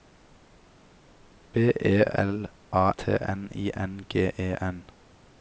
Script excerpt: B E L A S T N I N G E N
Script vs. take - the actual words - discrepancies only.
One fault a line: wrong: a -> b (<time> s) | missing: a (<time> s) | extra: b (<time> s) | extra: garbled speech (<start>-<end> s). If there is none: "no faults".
missing: S (2.9 s)